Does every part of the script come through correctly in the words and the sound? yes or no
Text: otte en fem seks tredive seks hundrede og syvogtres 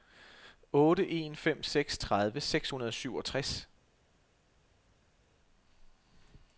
yes